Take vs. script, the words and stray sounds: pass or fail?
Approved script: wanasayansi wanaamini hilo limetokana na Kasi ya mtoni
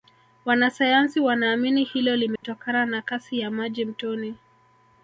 fail